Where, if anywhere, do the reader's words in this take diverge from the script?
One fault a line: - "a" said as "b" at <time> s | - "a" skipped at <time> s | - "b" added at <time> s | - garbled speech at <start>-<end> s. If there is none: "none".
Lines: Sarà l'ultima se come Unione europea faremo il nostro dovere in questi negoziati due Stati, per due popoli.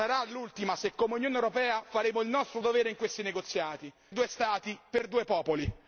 none